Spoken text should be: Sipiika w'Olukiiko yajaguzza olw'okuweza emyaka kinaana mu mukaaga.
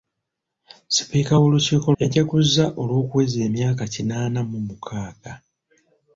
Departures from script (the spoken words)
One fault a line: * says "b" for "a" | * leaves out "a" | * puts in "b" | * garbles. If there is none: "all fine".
all fine